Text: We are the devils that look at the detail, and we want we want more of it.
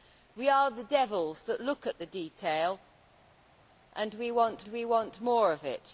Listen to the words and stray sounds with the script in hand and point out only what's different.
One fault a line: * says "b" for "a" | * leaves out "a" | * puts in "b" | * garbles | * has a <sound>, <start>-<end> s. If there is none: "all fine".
all fine